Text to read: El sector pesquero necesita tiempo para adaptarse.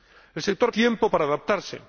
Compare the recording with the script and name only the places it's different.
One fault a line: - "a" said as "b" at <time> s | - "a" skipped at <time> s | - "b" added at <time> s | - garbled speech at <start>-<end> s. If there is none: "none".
- "pesquero necesita" skipped at 0.7 s